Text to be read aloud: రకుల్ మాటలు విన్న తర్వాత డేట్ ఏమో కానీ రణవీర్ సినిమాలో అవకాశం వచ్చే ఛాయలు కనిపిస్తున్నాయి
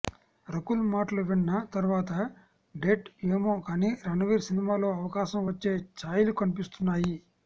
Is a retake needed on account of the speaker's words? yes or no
no